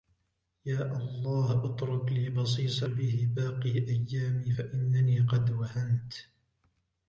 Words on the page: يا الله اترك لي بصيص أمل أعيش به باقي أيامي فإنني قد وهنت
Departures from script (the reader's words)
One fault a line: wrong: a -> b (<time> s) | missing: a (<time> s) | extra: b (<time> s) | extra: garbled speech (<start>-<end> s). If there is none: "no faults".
missing: أمل أعيش (2.8 s)